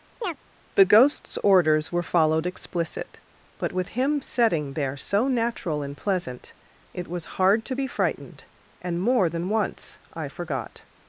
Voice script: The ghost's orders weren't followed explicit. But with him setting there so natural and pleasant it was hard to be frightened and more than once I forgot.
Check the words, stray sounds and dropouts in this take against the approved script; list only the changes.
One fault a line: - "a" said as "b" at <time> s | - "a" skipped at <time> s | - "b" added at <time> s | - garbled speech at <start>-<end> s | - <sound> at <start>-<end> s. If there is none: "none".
- chirp at 0.2-0.4 s
- "weren't" said as "were" at 1.9 s